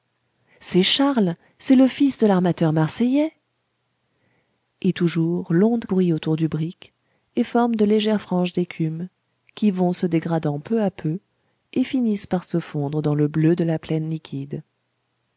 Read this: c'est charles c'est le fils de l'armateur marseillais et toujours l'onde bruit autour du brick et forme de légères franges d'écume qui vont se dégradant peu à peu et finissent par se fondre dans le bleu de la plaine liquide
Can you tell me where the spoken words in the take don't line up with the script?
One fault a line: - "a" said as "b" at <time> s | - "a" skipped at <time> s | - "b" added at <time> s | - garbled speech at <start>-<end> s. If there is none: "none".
none